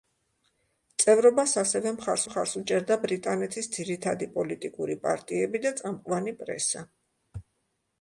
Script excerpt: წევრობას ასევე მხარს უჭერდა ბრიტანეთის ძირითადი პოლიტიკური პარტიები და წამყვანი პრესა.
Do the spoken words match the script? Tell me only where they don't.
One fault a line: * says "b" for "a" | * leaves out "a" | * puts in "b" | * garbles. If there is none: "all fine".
* puts in "მხარს"